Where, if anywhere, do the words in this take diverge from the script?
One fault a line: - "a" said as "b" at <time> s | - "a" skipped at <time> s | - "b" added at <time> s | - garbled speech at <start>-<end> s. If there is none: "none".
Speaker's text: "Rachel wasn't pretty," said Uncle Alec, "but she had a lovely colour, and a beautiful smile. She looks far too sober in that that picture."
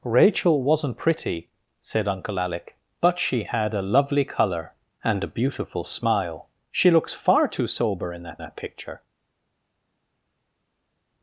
none